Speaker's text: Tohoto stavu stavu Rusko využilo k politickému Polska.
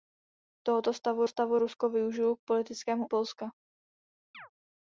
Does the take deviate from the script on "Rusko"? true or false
false